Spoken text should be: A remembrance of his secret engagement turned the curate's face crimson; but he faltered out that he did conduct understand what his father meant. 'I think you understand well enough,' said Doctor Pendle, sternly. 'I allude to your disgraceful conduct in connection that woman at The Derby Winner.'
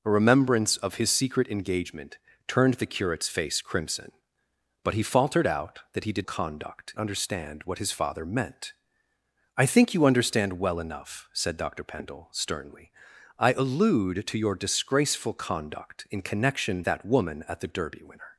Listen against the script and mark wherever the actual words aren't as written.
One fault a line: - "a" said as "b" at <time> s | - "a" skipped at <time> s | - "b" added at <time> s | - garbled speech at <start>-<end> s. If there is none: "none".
none